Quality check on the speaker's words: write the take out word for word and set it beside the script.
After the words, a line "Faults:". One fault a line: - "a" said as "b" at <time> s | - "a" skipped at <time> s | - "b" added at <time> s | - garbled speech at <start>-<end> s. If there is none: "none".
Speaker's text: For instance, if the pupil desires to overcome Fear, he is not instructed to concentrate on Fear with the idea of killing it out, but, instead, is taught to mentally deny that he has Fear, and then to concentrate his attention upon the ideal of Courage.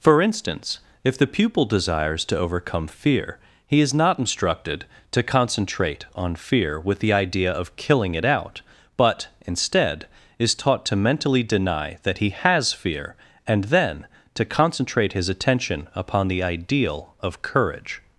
For instance, if the pupil desires to overcome Fear, he is not instructed to concentrate on Fear with the idea of killing it out, but, instead, is taught to mentally deny that he has Fear, and then to concentrate his attention upon the ideal of Courage.
Faults:
none